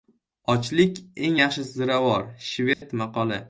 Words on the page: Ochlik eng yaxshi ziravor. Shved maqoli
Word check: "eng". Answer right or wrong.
right